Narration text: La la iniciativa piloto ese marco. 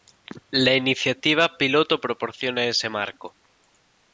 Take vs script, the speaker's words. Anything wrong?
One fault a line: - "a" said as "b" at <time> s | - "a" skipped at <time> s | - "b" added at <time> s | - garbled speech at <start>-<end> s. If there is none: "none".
- "la" skipped at 0.7 s
- "proporciona" added at 2.0 s